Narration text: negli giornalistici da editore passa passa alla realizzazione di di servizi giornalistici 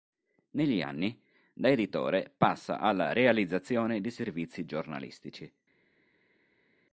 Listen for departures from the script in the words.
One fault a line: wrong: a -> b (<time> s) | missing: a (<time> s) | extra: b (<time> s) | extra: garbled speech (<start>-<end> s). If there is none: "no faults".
wrong: giornalistici -> anni (0.8 s)
missing: passa (2.8 s)
missing: di (4.1 s)